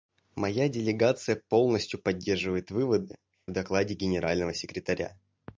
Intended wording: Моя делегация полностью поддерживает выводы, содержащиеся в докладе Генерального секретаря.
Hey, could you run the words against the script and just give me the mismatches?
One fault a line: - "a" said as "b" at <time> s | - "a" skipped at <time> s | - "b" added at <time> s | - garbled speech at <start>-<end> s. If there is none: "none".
- "содержащиеся" skipped at 3.2 s